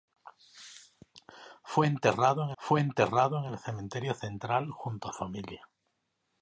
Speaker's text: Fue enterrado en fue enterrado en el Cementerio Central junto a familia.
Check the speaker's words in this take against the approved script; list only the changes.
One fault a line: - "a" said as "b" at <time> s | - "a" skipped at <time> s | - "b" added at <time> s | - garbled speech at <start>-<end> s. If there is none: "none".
none